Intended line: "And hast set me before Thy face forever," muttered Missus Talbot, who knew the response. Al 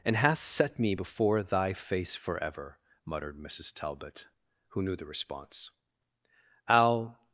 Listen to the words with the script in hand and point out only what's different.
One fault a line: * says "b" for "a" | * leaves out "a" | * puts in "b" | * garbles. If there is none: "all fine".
all fine